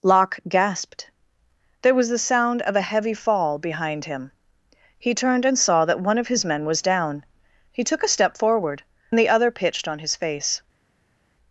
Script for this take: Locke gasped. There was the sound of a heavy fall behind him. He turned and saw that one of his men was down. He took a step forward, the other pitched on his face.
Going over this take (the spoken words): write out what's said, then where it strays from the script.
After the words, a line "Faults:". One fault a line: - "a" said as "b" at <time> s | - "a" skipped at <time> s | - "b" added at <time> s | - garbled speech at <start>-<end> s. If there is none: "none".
Locke gasped. There was the sound of a heavy fall behind him. He turned and saw that one of his men was down. He took a step forward, the other pitched on his face.
Faults:
none